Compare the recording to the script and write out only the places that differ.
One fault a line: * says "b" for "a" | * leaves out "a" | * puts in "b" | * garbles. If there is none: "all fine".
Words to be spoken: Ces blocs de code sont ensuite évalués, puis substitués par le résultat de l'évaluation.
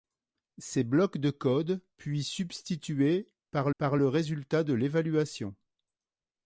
* leaves out "sont ensuite évalués"
* puts in "par"